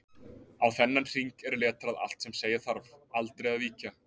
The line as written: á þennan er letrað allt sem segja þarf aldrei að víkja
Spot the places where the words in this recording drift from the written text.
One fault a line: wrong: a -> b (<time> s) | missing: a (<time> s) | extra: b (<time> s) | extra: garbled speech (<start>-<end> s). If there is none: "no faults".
extra: hring (1.1 s)